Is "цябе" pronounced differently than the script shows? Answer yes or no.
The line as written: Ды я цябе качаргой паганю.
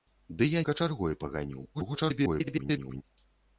yes